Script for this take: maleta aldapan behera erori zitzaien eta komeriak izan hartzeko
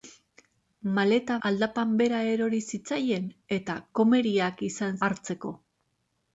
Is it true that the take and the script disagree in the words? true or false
false